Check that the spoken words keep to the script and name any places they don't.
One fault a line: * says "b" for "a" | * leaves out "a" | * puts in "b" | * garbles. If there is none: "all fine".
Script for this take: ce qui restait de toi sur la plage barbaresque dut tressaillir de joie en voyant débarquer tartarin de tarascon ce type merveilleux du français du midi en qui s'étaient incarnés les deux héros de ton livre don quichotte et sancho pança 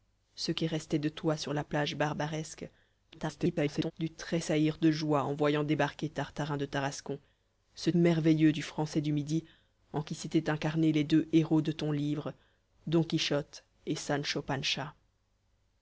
* garbles
* leaves out "type"